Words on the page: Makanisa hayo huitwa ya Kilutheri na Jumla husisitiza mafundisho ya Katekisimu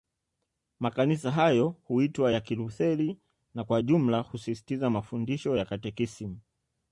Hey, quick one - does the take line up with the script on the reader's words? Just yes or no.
no